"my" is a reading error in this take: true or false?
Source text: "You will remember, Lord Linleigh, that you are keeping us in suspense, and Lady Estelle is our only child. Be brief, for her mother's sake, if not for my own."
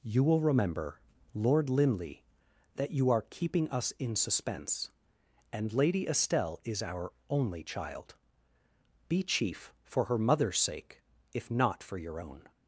true